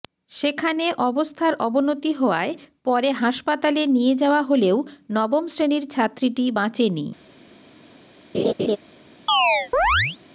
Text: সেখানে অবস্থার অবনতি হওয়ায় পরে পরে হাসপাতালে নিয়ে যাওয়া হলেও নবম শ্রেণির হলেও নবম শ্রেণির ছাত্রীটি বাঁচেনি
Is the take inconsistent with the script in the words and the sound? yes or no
yes